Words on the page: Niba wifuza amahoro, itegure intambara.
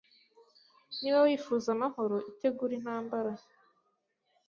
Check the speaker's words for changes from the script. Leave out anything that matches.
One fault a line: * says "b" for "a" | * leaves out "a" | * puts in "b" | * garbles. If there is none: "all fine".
all fine